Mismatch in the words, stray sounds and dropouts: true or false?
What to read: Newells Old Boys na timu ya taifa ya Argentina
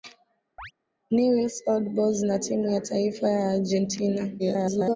true